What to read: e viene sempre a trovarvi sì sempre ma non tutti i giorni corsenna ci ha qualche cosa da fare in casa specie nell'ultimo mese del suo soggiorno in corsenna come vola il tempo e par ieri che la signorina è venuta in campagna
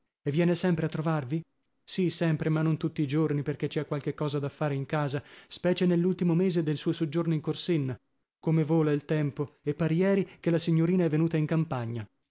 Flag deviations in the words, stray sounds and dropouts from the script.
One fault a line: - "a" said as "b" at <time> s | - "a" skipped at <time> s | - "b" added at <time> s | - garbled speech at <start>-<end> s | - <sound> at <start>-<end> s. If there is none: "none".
- "corsenna" said as "perchè" at 3.4 s